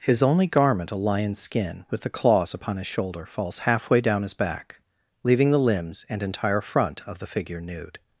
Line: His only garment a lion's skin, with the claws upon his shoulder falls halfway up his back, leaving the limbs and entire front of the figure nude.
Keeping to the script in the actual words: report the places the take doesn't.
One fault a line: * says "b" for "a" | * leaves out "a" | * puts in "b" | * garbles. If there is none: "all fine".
* says "down" for "up"